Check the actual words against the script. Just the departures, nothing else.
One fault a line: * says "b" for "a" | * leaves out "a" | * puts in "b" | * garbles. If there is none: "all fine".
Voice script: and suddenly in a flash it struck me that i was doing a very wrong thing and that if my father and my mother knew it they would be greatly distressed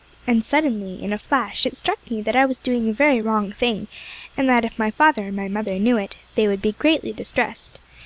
all fine